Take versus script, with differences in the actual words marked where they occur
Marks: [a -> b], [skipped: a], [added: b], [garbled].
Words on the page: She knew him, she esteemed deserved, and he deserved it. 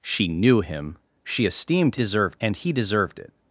She knew him, she esteemed deserved, and he deserved it.